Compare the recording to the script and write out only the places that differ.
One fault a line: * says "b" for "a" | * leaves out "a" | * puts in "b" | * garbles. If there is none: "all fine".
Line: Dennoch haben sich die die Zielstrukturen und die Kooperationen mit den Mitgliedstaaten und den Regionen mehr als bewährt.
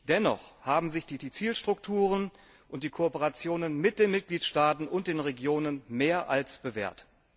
all fine